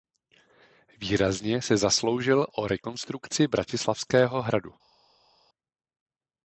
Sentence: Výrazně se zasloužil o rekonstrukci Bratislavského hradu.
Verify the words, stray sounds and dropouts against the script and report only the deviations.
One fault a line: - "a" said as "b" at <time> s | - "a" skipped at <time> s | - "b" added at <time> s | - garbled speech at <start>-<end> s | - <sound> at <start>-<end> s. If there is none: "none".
none